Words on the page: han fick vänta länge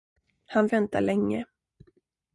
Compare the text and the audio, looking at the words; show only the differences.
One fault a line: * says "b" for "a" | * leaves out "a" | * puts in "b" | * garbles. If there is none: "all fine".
* leaves out "fick"